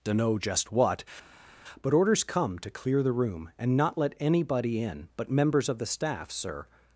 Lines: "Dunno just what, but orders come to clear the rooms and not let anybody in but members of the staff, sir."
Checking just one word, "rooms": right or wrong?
wrong